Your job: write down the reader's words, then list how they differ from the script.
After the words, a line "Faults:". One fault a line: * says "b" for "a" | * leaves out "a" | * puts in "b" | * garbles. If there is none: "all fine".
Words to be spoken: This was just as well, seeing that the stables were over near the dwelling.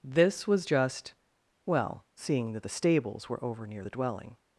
This was just well, seeing that the stables were over near the dwelling.
Faults:
* leaves out "as"